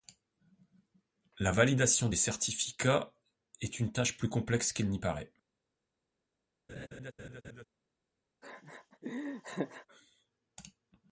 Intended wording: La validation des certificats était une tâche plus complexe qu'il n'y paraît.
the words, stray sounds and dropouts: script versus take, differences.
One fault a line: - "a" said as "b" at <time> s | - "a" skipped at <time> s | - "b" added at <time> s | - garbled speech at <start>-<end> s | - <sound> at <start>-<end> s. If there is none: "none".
- "était" said as "est" at 3.6 s
- laugh at 6.7-7.6 s
- laugh at 8.4-9.9 s